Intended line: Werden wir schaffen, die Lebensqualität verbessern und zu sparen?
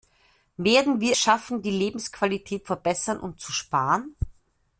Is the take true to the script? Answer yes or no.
yes